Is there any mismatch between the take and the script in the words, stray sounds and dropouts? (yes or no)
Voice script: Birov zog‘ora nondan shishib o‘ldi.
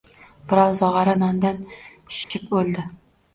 yes